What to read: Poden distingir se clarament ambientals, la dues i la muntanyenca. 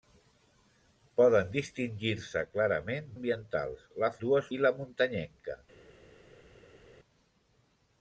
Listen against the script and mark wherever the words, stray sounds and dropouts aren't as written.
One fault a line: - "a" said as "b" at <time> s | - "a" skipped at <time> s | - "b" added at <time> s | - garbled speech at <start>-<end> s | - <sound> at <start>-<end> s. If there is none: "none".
none